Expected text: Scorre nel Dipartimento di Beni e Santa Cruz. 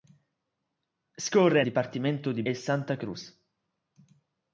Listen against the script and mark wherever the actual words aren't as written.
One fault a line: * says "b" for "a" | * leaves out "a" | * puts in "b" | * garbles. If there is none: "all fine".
* leaves out "nel"
* leaves out "Beni"